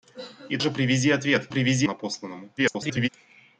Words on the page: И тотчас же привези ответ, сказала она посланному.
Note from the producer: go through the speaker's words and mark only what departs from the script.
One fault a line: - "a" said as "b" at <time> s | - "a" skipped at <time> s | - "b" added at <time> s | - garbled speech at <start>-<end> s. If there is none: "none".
- "тотчас" skipped at 0.6 s
- "сказала" said as "привези" at 1.5 s
- garbled speech at 2.6-3.1 s